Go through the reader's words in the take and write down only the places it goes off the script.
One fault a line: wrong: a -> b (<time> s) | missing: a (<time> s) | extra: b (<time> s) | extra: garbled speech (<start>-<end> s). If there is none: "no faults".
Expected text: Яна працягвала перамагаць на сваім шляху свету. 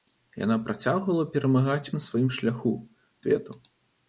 no faults